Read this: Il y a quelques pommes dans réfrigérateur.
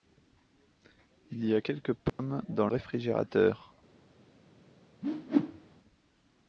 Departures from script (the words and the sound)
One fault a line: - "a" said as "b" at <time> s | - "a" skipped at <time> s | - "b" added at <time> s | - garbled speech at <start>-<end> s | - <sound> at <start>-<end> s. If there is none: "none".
- dropout at 2.1-2.2 s
- whoosh at 5.0-5.8 s